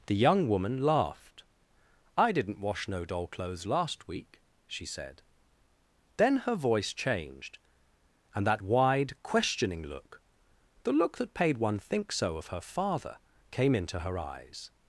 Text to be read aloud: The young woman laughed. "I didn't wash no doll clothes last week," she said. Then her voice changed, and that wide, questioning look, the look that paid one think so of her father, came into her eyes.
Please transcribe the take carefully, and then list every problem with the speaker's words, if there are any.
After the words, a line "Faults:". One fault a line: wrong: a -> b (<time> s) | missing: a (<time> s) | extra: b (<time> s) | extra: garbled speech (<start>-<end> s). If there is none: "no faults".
The young woman laughed. "I didn't wash no doll clothes last week," she said. Then her voice changed, and that wide, questioning look, the look that paid one think so of her father, came into her eyes.
Faults:
no faults